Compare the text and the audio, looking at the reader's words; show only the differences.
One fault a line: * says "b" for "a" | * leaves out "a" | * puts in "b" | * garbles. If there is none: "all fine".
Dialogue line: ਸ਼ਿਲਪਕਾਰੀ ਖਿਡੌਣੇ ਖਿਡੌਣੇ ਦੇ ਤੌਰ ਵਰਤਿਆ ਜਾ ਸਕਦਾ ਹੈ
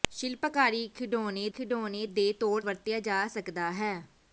all fine